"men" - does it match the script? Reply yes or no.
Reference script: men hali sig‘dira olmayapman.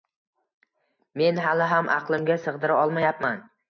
yes